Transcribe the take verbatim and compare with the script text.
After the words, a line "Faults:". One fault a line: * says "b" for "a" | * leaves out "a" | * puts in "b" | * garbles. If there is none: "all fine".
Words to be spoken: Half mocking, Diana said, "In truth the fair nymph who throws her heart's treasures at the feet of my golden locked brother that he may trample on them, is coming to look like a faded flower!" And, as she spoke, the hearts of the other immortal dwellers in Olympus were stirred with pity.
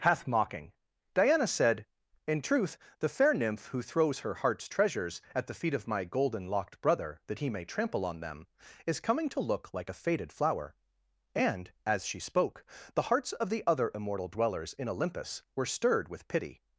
Hath mocking, Diana said, "In truth the fair nymph who throws her heart's treasures at the feet of my golden locked brother that he may trample on them, is coming to look like a faded flower!" And, as she spoke, the hearts of the other immortal dwellers in Olympus were stirred with pity.
Faults:
* says "Hath" for "Half"